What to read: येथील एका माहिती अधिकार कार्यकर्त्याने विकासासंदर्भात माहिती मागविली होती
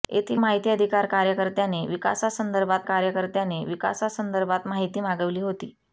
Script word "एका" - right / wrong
wrong